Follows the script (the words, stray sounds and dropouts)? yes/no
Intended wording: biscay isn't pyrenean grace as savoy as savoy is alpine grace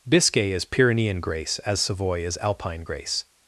no